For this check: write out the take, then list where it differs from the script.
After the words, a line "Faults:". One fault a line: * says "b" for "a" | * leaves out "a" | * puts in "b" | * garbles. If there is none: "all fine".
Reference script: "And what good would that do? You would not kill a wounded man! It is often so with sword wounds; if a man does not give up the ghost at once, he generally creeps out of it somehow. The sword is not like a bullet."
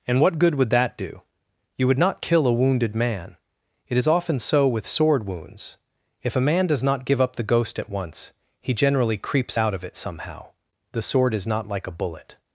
"And what good would that do? You would not kill a wounded man! It is often so with sword wounds; if a man does not give up the ghost at once, he generally creeps out of it somehow. The sword is not like a bullet."
Faults:
all fine